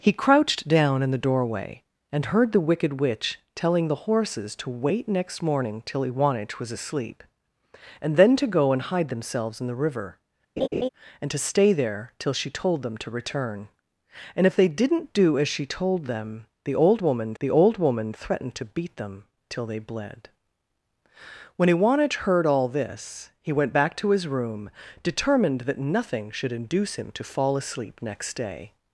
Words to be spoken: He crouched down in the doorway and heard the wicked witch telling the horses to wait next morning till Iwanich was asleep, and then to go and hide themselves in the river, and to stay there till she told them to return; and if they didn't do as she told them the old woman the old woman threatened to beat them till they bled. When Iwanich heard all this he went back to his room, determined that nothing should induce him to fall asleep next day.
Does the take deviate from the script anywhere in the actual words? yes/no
no